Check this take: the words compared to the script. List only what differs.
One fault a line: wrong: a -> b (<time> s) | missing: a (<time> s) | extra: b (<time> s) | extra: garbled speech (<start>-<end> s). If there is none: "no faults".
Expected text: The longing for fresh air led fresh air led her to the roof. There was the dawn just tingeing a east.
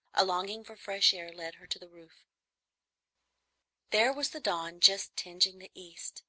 wrong: The -> A (0.1 s)
missing: fresh air led (1.5 s)
wrong: a -> the (5.6 s)